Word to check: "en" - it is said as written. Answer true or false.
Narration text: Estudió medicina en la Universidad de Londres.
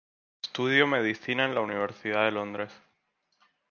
true